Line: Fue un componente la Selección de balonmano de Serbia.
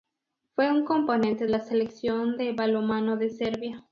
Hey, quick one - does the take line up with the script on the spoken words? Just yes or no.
yes